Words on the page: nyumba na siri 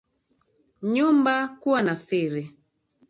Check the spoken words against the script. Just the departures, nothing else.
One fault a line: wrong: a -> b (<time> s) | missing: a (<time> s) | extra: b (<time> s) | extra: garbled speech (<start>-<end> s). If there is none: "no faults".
extra: kuwa (1.5 s)